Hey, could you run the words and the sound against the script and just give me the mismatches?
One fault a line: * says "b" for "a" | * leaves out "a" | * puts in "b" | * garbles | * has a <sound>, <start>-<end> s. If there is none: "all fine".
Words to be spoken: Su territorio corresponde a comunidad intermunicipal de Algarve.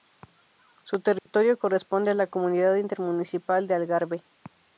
* has a dropout, 1.2-1.3 s
* puts in "la"